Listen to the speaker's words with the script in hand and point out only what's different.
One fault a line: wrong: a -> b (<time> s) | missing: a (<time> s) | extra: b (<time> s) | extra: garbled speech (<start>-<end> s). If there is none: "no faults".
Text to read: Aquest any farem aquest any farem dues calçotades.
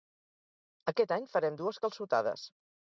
missing: aquest any farem (1.6 s)